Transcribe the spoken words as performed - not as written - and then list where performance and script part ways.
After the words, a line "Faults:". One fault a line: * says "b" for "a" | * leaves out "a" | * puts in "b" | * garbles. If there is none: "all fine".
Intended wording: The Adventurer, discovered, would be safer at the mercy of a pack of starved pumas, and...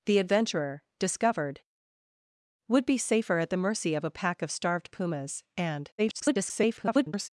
The Adventurer, discovered, would be safer at the mercy of a pack of starved pumas, and... [garbled]
Faults:
* garbles